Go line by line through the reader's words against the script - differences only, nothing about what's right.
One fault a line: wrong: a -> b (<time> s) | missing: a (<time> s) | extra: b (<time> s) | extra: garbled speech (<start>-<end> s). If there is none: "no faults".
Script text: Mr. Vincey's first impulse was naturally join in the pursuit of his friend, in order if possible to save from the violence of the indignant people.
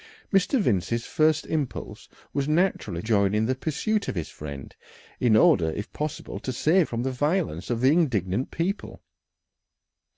no faults